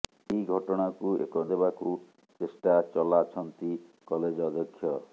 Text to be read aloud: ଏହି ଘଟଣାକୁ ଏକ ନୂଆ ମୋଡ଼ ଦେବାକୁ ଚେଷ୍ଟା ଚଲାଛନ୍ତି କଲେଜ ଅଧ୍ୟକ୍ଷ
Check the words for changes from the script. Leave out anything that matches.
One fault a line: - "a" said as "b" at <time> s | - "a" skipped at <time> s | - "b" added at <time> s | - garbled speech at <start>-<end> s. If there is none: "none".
- "ନୂଆ ମୋଡ଼" skipped at 1.4 s